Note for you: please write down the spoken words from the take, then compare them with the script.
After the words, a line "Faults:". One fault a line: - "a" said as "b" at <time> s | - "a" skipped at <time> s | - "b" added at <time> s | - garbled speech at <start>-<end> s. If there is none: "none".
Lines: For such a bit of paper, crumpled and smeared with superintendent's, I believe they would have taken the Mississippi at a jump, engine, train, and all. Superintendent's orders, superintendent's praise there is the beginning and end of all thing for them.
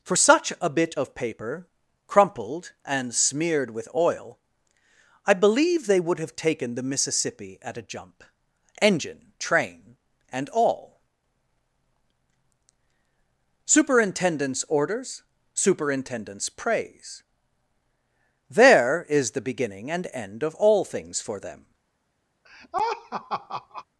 For such a bit of paper, crumpled and smeared with oil, I believe they would have taken the Mississippi at a jump, engine, train, and all. Superintendent's orders, superintendent's praise there is the beginning and end of all things for them.
Faults:
- "superintendent's" said as "oil" at 3.9 s
- "thing" said as "things" at 20.8 s